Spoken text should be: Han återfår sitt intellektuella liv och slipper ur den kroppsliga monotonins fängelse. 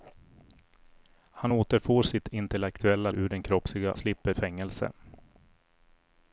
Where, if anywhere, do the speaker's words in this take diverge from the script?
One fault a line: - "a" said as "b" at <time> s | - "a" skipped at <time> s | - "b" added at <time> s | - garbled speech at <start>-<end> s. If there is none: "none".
- "liv och slipper" skipped at 3.1 s
- "monotonins" said as "slipper" at 4.0 s